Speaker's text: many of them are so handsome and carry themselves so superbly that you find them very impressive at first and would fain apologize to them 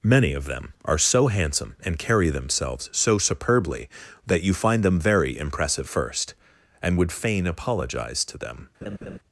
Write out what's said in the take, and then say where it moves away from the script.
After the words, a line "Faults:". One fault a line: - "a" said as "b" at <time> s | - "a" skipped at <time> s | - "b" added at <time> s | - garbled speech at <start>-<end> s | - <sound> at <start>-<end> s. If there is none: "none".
many of them are so handsome and carry themselves so superbly that you find them very impressive first and would fain apologize to them
Faults:
- "at" skipped at 5.9 s
- laugh at 8.8-9.2 s